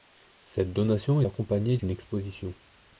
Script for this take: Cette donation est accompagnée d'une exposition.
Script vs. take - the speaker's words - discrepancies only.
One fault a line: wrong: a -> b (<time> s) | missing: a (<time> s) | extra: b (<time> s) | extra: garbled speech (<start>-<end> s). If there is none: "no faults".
missing: est (1.2 s)